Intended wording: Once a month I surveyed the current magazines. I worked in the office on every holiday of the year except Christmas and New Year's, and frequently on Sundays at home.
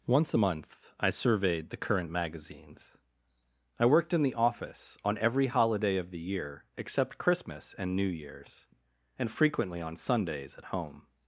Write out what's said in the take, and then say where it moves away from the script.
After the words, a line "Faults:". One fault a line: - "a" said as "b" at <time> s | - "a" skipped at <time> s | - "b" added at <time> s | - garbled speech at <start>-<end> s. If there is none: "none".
Once a month I surveyed the current magazines. I worked in the office on every holiday of the year except Christmas and New Year's, and frequently on Sundays at home.
Faults:
none